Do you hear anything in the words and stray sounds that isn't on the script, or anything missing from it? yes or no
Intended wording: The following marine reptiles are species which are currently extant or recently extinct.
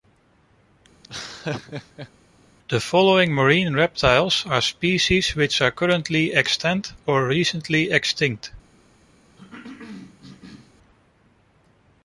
yes